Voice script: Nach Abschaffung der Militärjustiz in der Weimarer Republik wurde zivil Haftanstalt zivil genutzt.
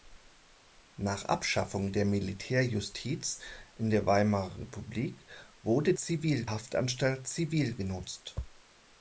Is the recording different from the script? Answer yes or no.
no